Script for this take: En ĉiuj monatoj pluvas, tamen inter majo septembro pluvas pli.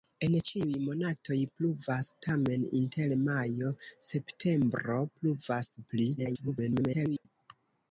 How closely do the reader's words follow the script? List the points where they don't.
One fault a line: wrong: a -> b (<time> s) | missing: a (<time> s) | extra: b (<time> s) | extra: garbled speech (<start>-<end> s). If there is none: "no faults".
extra: garbled speech (6.2-7.3 s)